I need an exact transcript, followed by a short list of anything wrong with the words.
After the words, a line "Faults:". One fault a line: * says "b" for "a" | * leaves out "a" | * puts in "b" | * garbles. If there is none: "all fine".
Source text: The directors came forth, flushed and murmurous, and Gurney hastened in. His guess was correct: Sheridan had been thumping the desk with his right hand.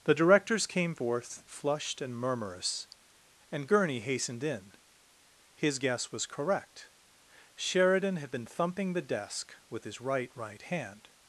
The directors came forth, flushed and murmurous, and Gurney hastened in. His guess was correct: Sheridan had been thumping the desk with his right right hand.
Faults:
* puts in "right"